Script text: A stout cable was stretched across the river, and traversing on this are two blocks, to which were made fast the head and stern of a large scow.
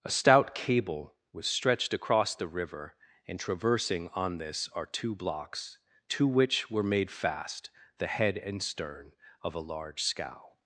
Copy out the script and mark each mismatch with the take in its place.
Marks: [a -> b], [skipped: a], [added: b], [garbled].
A stout cable was stretched across the river, and traversing on this are two blocks, to which were made fast the head and stern of a large scow.